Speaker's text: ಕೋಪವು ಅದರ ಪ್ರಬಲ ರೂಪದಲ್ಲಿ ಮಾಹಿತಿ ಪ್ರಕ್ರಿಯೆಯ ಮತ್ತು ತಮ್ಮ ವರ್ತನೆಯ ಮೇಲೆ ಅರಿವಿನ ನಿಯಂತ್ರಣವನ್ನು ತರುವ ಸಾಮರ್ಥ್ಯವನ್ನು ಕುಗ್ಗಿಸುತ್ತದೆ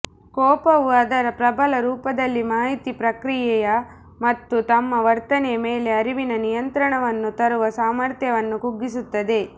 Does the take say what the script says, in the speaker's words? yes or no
yes